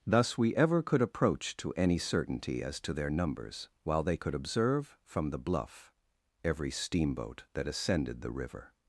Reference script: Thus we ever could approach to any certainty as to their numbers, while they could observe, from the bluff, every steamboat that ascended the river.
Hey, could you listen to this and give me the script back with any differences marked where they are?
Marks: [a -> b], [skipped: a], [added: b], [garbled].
Thus we ever could approach to any certainty as to their numbers, while they could observe, from the bluff, every steamboat that ascended the river.